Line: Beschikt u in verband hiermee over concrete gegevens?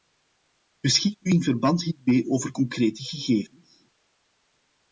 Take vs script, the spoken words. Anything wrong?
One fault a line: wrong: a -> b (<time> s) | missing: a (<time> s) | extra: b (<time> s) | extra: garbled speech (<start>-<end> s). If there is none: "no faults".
no faults